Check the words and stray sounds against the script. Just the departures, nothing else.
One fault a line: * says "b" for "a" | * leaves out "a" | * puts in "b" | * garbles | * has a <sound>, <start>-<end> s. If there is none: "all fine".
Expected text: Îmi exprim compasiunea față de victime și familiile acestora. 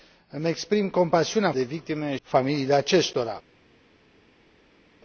* leaves out "față"
* leaves out "și"